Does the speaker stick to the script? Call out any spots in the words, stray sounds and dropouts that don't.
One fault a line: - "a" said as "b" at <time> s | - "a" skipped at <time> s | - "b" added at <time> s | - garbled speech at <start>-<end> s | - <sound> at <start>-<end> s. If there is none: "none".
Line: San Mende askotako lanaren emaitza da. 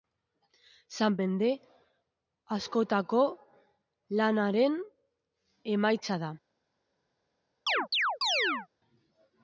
- chirp at 7.7-8.7 s